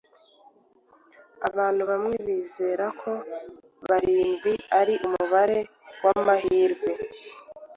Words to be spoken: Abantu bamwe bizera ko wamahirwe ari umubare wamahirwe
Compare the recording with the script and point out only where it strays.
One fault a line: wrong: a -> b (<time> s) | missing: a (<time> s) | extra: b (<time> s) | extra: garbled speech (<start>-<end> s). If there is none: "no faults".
wrong: wamahirwe -> barindwi (3.9 s)